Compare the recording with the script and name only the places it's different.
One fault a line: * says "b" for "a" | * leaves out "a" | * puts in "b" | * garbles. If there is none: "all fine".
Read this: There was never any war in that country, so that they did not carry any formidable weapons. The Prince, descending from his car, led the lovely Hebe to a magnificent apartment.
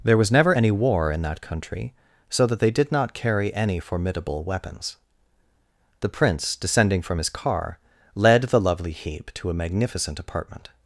all fine